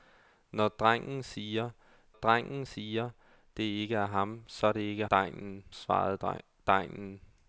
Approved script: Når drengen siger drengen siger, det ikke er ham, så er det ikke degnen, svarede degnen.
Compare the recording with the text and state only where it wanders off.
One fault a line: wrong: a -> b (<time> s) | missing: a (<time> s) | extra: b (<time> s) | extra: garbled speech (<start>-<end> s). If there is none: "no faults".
no faults